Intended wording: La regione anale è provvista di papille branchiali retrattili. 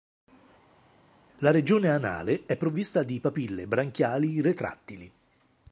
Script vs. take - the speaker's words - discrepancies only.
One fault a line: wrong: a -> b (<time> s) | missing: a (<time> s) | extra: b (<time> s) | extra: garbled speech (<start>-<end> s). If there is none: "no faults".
no faults